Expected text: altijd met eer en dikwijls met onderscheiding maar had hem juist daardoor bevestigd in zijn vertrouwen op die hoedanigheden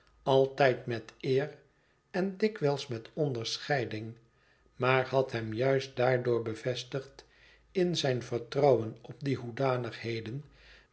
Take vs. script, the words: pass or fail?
pass